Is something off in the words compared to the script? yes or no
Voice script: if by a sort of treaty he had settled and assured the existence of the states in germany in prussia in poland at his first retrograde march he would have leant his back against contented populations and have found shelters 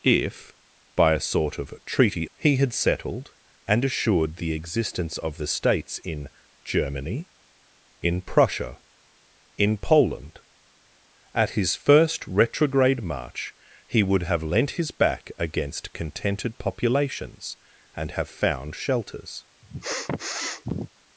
no